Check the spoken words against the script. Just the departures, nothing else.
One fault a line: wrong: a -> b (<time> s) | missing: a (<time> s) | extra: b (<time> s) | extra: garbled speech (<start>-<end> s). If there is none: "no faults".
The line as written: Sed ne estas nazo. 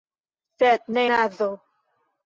missing: estas (1.0 s)